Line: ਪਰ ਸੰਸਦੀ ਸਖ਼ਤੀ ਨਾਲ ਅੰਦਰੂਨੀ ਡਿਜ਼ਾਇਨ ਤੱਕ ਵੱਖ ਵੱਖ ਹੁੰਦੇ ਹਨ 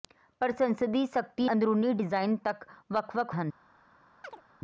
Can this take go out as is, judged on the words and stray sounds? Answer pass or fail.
fail